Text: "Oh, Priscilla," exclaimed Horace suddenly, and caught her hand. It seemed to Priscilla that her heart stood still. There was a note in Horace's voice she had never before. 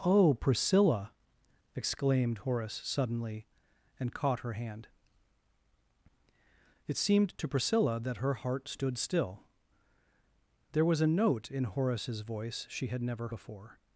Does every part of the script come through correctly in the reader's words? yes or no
yes